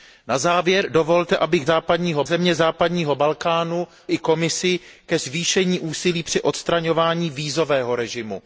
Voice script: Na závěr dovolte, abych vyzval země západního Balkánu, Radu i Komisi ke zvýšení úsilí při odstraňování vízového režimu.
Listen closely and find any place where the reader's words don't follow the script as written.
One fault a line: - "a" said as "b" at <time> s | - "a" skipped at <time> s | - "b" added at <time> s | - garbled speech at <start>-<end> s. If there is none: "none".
- "vyzval" said as "západního" at 1.6 s
- "Radu" skipped at 3.9 s